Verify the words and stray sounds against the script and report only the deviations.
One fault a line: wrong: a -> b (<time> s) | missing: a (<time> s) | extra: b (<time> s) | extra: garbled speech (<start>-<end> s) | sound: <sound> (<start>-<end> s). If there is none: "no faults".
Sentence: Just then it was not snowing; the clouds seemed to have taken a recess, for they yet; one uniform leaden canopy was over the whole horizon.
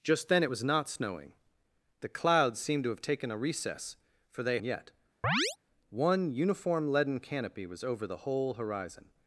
sound: chirp (5.2-5.6 s)